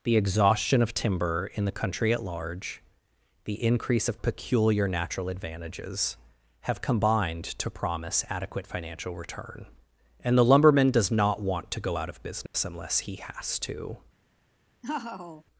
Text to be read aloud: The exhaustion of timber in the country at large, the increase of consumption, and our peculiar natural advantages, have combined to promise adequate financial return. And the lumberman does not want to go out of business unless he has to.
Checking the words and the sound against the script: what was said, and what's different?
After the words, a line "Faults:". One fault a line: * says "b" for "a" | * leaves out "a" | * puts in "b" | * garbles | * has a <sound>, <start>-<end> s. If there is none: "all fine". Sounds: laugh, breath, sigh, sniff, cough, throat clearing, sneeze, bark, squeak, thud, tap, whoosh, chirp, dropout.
The exhaustion of timber in the country at large, the increase of peculiar natural advantages, have combined to promise adequate financial return. And the lumberman does not want to go out of business unless he has to.
Faults:
* leaves out "consumption and our"
* has a dropout, 12.5-12.5 s
* has a laugh, 14.8-15.4 s